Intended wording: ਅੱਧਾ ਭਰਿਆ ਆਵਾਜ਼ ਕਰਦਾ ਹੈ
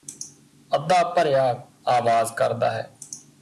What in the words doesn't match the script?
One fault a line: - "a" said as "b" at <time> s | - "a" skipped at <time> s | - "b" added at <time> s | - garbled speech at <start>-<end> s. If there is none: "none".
none